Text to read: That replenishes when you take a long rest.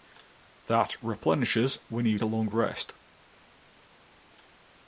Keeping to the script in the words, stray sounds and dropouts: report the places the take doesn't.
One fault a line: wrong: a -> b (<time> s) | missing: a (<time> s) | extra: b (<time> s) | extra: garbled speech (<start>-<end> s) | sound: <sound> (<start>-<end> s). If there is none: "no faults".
missing: take (2.2 s)